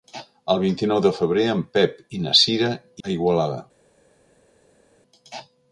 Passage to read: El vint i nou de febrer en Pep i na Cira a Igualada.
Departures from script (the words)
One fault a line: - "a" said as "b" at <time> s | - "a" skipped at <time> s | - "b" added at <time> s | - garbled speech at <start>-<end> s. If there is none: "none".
none